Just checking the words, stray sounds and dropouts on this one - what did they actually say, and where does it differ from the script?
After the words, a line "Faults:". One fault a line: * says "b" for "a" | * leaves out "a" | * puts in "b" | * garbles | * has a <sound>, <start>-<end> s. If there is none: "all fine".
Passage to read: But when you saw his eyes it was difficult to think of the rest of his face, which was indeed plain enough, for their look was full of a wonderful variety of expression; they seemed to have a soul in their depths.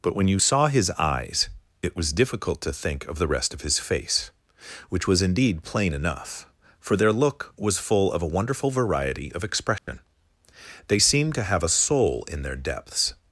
But when you saw his eyes it was difficult to think of the rest of his face, which was indeed plain enough, for their look was full of a wonderful variety of expression; they seemed to have a soul in their depths.
Faults:
* has a dropout, 9.8-9.9 s